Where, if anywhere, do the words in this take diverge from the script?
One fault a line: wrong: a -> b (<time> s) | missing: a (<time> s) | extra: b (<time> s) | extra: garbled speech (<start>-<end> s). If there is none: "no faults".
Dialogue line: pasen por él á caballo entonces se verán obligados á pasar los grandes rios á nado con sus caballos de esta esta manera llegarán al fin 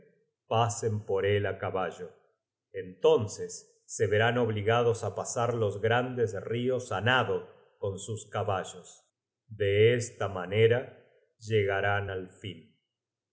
missing: esta (10.3 s)